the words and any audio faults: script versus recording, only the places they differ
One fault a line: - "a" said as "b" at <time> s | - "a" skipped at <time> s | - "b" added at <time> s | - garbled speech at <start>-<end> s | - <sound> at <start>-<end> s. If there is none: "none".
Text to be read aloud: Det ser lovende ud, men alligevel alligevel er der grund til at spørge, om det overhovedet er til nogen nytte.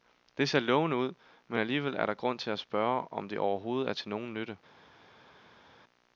- "alligevel" skipped at 2.0 s